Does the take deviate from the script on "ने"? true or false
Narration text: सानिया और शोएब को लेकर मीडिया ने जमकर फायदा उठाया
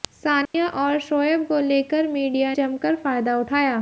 true